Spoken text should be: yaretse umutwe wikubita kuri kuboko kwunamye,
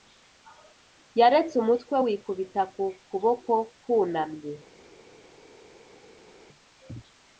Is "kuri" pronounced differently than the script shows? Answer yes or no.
yes